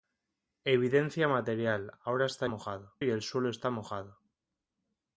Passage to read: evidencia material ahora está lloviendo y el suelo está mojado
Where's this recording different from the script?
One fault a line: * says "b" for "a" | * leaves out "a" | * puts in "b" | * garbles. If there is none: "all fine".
* says "mojado" for "lloviendo"